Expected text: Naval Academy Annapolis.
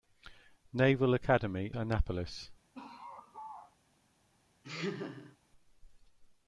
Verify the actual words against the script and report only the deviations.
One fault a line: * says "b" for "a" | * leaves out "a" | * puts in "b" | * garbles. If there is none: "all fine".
all fine